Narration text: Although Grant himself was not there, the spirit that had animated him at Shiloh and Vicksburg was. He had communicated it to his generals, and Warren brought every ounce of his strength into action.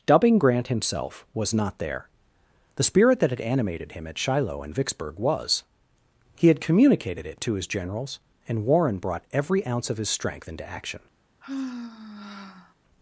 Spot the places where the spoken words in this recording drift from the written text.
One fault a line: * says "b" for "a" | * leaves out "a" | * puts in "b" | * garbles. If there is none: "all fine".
* says "Dubbing" for "Although"